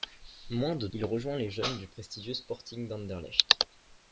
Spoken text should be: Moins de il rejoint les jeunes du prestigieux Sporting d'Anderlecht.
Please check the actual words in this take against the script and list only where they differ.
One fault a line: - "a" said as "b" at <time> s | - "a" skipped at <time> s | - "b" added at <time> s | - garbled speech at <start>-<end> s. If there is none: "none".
none